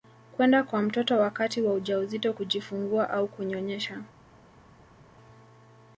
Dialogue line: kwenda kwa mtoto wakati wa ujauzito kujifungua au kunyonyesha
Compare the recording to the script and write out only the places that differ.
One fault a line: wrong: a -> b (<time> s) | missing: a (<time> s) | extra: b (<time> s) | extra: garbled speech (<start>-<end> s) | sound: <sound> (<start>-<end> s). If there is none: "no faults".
no faults